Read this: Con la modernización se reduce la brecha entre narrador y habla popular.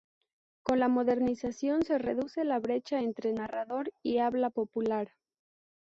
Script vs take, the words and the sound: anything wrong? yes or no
no